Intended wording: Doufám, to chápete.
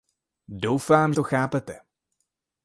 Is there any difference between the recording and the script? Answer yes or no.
no